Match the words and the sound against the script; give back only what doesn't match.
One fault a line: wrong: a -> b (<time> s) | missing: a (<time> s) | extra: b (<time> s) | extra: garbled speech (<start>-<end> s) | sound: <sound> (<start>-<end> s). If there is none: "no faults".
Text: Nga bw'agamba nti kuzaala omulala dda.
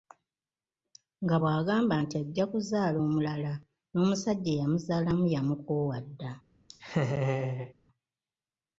extra: ajja (2.2 s)
extra: n'omusajja eyamuzaalamu yamukoowa (3.9 s)
sound: laugh (6.7-7.7 s)